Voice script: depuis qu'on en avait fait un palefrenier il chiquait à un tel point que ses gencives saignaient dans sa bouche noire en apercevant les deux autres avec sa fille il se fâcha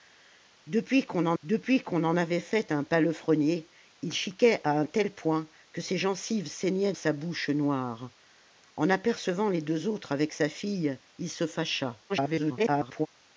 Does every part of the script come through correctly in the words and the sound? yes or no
no